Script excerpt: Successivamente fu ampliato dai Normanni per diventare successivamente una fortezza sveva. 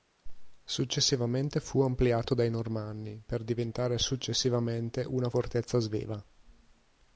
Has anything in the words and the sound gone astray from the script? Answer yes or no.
no